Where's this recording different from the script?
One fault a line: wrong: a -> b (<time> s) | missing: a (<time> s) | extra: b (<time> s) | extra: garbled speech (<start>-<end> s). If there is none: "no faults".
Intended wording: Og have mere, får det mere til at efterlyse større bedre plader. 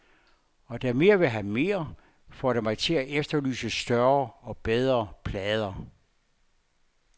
extra: da mere vil (0.8 s)
wrong: mere -> mig (2.6 s)
extra: og (4.4 s)